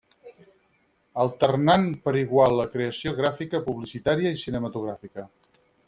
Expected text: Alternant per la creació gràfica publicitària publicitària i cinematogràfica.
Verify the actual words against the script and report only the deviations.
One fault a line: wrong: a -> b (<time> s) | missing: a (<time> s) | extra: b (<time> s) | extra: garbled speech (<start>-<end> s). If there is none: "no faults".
extra: igual (2.2 s)
missing: publicitària (4.3 s)